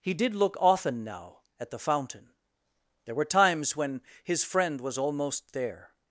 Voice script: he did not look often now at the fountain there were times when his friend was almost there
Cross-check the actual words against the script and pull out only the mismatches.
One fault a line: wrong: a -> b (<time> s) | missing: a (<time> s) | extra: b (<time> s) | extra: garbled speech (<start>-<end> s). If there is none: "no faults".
missing: not (0.3 s)